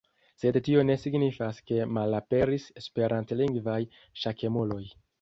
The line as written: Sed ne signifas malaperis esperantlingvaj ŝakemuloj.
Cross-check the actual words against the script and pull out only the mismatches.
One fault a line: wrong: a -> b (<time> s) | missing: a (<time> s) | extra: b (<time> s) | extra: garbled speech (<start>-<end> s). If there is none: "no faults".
extra: tio (0.7 s)
extra: ke (1.7 s)